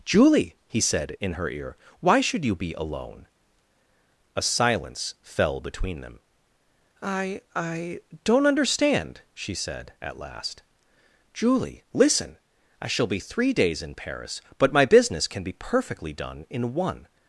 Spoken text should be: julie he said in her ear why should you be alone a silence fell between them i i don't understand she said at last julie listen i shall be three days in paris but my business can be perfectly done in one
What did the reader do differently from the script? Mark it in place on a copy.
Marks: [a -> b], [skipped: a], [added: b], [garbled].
julie he said in her ear why should you be alone a silence fell between them i i don't understand she said at last julie listen i shall be three days in paris but my business can be perfectly done in one